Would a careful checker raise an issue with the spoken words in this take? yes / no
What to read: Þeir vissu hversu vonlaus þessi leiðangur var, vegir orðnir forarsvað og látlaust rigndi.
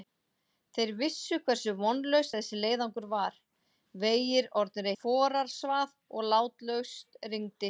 no